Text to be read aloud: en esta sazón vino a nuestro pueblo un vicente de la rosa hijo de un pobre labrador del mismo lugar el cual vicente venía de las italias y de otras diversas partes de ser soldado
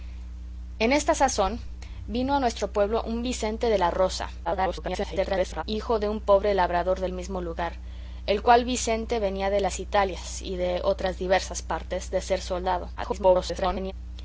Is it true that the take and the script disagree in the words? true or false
true